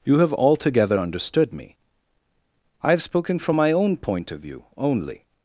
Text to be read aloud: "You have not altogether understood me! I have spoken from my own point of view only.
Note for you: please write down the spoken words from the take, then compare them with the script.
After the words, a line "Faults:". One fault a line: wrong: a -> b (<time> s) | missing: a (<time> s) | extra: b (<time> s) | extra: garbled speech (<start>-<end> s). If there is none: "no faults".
"You have altogether understood me! I have spoken from my own point of view only.
Faults:
missing: not (0.3 s)